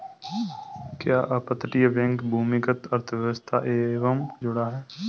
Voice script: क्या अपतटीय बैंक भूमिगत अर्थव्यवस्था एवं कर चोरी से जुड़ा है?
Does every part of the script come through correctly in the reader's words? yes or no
no